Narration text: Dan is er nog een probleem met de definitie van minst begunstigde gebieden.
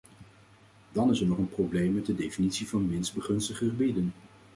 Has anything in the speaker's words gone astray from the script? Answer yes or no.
no